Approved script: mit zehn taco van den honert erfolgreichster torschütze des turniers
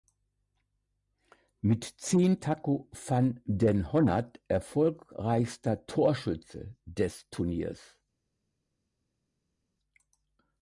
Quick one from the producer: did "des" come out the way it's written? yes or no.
yes